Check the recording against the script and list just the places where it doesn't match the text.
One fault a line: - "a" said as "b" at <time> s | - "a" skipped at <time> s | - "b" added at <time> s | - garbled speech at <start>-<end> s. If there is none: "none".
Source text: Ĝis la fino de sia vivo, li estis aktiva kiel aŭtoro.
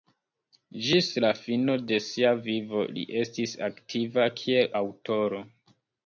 none